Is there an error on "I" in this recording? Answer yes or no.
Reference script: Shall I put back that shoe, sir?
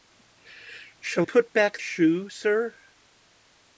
yes